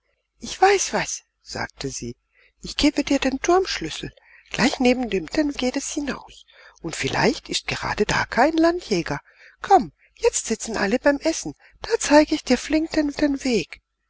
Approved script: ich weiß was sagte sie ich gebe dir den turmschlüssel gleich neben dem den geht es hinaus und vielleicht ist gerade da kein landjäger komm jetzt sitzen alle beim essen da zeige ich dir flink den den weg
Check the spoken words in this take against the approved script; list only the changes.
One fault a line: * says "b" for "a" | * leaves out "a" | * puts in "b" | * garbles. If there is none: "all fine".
all fine